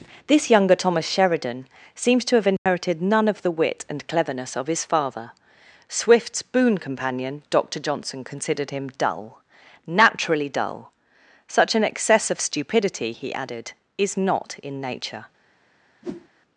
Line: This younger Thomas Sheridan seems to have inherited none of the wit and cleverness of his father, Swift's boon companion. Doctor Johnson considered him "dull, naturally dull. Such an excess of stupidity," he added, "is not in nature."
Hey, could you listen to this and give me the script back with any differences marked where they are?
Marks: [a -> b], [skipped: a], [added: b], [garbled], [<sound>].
This younger Thomas Sheridan seems to have inherited [dropout] none of the wit and cleverness of his father, Swift's boon companion. Doctor Johnson considered him "dull, naturally dull. Such an excess of stupidity," he added, "is not in nature." [whoosh]